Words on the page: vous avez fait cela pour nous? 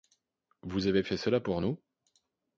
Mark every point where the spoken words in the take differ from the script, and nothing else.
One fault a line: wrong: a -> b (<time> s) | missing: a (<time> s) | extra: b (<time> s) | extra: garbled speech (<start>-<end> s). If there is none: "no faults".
no faults